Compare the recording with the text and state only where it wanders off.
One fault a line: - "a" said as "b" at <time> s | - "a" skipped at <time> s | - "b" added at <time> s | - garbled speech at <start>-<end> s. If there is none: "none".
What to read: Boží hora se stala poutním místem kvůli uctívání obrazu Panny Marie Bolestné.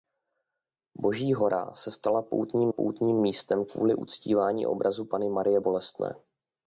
- "poutním" added at 2.7 s